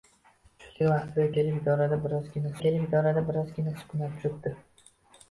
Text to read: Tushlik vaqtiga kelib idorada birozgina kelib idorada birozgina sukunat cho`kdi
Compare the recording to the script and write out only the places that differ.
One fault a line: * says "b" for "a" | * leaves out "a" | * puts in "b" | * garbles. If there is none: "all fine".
all fine